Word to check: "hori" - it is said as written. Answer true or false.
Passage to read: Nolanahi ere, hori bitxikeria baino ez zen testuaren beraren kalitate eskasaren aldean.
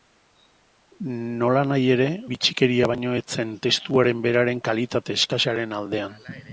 false